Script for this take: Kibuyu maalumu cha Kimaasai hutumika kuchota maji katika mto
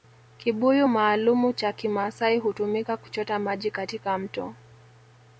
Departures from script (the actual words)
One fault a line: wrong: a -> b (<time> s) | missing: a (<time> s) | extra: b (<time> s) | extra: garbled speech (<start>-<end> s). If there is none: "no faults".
no faults